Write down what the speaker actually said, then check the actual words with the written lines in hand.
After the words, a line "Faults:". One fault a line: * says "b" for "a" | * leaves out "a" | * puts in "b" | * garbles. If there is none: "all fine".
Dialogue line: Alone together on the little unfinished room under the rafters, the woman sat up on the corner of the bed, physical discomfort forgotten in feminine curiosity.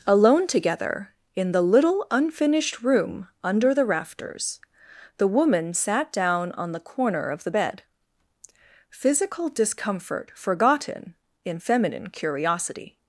Alone together in the little unfinished room under the rafters, the woman sat down on the corner of the bed, physical discomfort forgotten in feminine curiosity.
Faults:
* says "in" for "on"
* says "down" for "up"